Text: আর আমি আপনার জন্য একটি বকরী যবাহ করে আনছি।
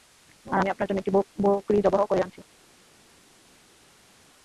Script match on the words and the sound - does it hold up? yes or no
yes